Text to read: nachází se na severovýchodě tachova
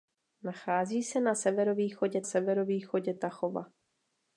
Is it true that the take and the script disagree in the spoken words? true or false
true